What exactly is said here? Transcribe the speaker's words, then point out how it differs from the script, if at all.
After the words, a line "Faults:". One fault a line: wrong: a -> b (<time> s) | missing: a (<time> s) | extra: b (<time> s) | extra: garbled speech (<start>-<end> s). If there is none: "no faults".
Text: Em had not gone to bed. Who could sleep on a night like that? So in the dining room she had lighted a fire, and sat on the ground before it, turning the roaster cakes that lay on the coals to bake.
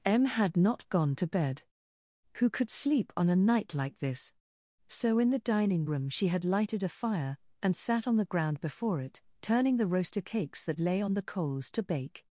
Em had not gone to bed. Who could sleep on a night like this? So in the dining room she had lighted a fire, and sat on the ground before it, turning the roaster cakes that lay on the coals to bake.
Faults:
wrong: that -> this (4.0 s)